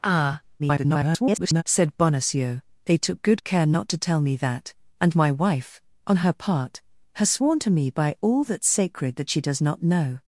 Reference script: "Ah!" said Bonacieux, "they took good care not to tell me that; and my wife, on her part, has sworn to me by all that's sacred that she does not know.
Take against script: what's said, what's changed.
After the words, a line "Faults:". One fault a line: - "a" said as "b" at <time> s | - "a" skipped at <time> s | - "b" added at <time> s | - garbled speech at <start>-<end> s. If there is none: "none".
"Ah!" [garbled] said Bonacieux, "they took good care not to tell me that; and my wife, on her part, has sworn to me by all that's sacred that she does not know.
Faults:
- garbled speech at 0.6-1.6 s